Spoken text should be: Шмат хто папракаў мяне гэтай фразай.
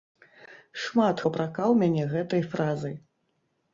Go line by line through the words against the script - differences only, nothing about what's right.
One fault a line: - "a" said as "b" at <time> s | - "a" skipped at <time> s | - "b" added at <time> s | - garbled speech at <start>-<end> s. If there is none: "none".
- "хто" skipped at 1.2 s